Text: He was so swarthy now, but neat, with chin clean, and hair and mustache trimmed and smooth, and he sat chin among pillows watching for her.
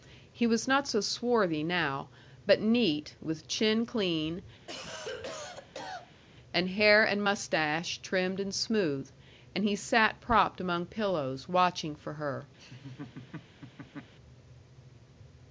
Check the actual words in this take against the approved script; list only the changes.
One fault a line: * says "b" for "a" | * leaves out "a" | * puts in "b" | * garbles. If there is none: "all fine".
* puts in "not"
* says "propped" for "chin"